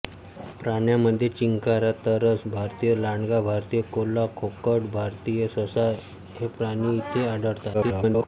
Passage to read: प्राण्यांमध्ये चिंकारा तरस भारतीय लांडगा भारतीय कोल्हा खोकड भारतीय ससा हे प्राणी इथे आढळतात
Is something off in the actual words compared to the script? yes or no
yes